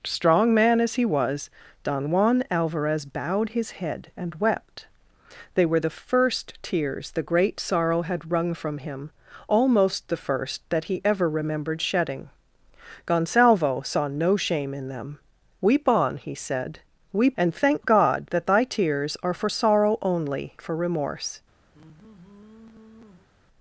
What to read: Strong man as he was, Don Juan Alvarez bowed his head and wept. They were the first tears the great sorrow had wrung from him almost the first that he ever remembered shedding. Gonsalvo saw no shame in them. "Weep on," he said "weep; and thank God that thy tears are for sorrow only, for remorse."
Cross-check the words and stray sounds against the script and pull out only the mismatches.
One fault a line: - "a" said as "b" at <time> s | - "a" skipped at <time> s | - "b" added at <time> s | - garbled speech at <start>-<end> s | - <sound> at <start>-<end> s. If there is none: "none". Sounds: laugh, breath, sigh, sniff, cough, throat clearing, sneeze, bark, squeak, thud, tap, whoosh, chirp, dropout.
- sigh at 21.7-23.3 s